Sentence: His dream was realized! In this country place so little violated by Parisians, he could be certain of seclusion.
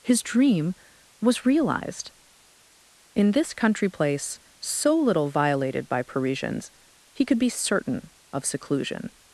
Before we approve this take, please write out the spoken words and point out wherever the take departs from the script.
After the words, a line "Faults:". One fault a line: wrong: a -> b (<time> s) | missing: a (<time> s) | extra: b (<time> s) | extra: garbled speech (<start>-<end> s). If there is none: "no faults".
His dream was realized! In this country place so little violated by Parisians, he could be certain of seclusion.
Faults:
no faults